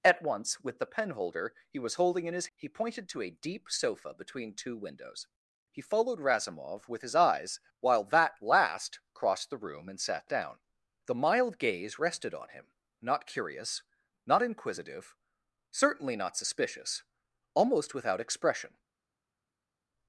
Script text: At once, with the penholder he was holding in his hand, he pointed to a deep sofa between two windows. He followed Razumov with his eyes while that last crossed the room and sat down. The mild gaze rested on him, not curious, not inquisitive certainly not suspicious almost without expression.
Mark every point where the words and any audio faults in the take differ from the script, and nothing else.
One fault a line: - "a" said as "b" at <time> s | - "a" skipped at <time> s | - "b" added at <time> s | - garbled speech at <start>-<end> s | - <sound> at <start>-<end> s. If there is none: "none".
- "hand" skipped at 2.5 s